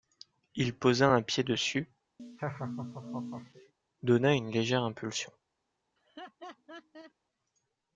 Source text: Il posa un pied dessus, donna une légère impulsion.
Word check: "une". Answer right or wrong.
right